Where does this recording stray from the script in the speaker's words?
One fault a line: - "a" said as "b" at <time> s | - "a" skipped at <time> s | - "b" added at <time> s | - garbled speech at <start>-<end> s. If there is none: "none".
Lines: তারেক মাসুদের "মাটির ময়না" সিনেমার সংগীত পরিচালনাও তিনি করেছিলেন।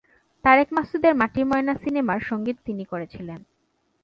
- "পরিচালনাও" skipped at 2.6 s